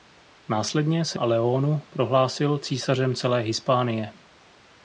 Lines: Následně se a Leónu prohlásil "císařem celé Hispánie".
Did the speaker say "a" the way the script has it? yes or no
yes